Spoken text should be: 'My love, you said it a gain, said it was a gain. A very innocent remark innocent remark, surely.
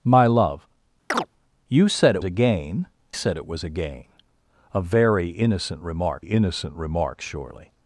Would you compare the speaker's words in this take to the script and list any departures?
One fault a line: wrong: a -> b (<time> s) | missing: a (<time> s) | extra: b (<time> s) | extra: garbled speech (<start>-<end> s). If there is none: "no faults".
no faults